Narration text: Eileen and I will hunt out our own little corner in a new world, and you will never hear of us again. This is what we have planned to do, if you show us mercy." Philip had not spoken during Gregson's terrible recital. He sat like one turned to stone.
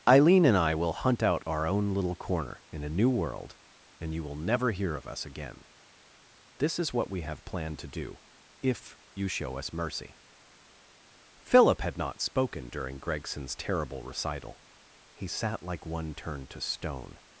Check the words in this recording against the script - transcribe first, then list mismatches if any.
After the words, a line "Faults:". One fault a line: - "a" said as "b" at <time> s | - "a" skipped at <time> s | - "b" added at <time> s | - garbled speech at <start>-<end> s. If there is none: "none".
Eileen and I will hunt out our own little corner in a new world, and you will never hear of us again. This is what we have planned to do, if you show us mercy." Philip had not spoken during Gregson's terrible recital. He sat like one turned to stone.
Faults:
none